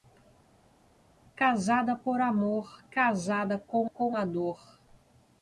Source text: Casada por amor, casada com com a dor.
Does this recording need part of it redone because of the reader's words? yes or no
no